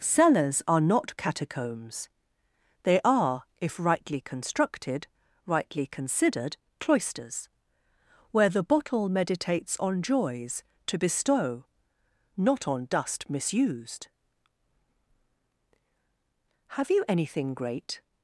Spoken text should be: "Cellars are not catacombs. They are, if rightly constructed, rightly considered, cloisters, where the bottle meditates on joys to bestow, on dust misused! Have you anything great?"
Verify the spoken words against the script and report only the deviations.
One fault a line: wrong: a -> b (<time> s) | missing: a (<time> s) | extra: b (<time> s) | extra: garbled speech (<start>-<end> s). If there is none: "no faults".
extra: not (12.4 s)